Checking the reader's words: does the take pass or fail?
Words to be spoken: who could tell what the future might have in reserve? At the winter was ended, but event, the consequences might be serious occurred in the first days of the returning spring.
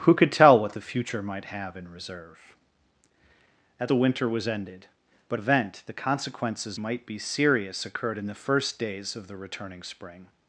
pass